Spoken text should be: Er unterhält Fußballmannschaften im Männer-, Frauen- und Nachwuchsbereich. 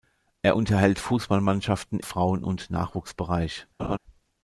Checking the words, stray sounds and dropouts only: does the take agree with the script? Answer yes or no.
no